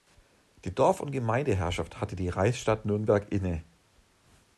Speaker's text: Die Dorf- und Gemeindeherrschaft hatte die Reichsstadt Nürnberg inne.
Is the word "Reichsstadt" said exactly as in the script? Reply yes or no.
yes